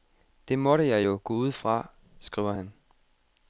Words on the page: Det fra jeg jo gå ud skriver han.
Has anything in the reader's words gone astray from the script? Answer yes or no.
yes